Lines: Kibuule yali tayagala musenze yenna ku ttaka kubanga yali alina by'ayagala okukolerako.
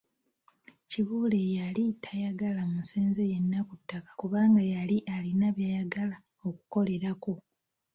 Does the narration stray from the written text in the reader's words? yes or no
no